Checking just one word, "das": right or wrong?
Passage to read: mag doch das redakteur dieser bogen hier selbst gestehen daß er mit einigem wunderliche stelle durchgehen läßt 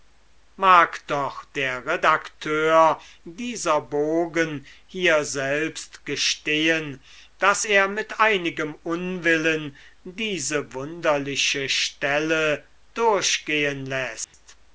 wrong